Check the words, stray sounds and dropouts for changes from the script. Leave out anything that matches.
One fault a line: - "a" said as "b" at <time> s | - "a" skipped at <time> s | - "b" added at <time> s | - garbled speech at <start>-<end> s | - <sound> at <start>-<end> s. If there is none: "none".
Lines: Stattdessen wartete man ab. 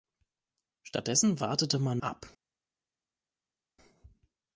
none